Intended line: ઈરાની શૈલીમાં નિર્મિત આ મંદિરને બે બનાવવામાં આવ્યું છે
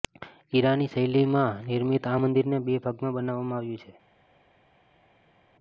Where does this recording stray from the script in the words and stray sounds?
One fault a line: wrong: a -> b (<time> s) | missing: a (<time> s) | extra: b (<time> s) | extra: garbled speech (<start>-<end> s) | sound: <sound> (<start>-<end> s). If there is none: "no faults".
extra: ભાગમાં (2.8 s)